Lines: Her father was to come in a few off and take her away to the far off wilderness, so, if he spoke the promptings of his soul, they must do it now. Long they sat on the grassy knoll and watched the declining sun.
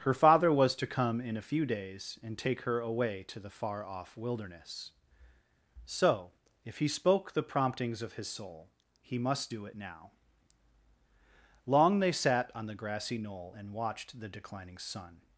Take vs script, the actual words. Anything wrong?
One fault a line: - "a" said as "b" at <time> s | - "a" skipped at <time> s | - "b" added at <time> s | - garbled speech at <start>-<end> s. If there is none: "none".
- "off" said as "days" at 1.6 s
- "they" said as "he" at 9.0 s